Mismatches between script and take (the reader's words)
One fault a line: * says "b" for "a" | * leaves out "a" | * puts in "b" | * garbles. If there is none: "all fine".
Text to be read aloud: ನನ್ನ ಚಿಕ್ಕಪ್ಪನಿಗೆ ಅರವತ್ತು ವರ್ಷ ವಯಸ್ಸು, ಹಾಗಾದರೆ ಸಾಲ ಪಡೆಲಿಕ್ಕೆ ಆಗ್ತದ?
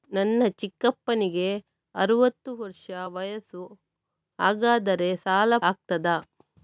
* leaves out "ಪಡೆಲಿಕ್ಕೆ"